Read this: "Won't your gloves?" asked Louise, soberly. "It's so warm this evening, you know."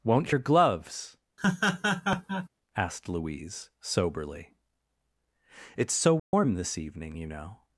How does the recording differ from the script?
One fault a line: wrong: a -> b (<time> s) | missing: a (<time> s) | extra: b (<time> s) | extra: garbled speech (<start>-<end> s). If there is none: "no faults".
no faults